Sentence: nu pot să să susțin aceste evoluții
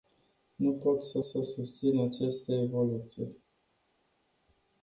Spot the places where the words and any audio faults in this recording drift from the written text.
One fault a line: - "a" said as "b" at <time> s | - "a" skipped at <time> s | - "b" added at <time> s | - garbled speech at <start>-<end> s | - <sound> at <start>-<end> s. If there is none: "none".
none